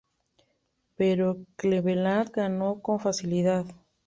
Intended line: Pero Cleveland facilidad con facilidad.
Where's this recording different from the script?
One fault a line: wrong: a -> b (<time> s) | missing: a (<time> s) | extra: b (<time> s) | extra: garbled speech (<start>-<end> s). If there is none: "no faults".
wrong: facilidad -> ganó (2.3 s)